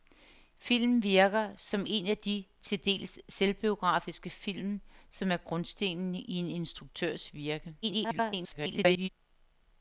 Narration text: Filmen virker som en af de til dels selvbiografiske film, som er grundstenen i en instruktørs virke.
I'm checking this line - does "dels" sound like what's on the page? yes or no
yes